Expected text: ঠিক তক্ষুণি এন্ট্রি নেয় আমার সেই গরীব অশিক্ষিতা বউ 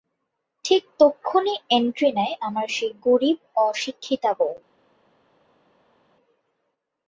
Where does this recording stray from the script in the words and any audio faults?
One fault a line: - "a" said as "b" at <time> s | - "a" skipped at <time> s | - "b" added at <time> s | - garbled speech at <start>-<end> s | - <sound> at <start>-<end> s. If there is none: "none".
none